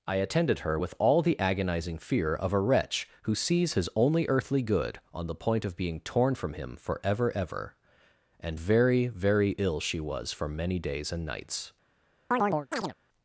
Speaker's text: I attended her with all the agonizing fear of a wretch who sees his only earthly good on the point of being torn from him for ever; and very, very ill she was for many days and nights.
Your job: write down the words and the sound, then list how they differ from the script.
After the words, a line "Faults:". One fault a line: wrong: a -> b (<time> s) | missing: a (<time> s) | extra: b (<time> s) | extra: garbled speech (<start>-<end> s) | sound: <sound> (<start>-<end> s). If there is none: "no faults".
I attended her with all the agonizing fear of a wretch who sees his only earthly good on the point of being torn from him for ever ever; and very, very ill she was for many days and nights.
Faults:
extra: ever (7.4 s)
sound: chirp (12.3-12.9 s)